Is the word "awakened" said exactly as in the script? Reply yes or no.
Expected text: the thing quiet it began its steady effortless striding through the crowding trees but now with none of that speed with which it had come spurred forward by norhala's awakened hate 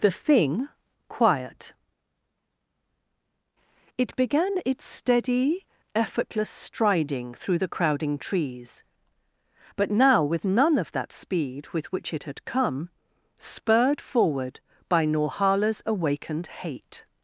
yes